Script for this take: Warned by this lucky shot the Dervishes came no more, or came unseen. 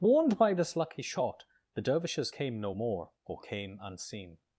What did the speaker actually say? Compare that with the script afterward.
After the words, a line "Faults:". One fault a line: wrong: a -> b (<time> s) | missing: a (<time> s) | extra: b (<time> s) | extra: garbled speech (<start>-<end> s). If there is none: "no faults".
Warned by this lucky shot the Dervishes came no more, or came unseen.
Faults:
no faults